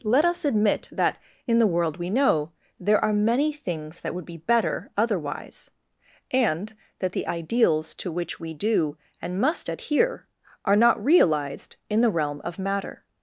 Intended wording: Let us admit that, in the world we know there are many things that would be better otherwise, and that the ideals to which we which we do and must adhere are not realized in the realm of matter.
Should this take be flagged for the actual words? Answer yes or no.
yes